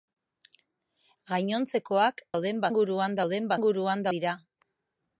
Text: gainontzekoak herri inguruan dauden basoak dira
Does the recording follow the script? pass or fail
fail